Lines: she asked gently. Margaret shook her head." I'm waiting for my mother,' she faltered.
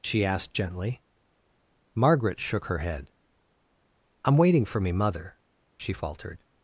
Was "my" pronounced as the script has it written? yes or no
no